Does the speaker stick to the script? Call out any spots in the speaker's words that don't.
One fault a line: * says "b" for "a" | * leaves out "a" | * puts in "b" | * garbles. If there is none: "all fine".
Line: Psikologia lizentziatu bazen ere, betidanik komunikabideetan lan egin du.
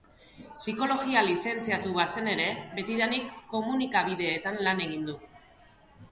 all fine